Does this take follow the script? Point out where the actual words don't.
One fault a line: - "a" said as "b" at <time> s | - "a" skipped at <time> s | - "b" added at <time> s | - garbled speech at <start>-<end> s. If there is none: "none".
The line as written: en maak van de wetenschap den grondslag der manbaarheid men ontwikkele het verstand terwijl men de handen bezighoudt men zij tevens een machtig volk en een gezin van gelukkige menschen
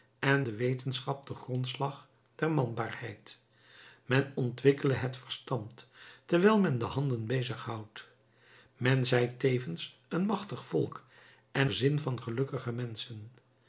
- "maak van" skipped at 0.5 s
- "een" skipped at 11.7 s